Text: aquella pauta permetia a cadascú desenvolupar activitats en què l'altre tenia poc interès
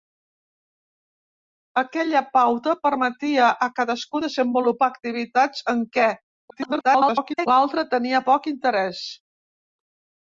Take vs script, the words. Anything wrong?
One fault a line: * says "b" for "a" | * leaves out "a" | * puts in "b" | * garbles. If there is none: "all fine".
* garbles